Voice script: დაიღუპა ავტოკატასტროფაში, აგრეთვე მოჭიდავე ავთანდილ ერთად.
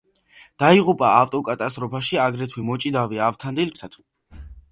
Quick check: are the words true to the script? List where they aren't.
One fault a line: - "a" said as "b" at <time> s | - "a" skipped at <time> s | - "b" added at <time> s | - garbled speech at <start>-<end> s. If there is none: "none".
none